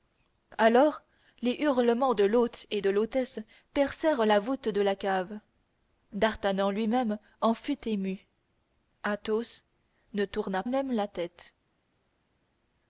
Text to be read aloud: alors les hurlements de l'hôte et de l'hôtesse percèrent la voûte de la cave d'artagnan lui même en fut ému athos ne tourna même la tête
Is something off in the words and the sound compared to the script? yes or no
no